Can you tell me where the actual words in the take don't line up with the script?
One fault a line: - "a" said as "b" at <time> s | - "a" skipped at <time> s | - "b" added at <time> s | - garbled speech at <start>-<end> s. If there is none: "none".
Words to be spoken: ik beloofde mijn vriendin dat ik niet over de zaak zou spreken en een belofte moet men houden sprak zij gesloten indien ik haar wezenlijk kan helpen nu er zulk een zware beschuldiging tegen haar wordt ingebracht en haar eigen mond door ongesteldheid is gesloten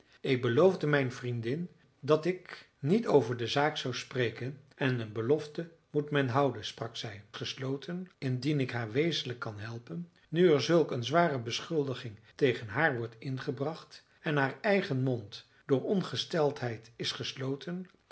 none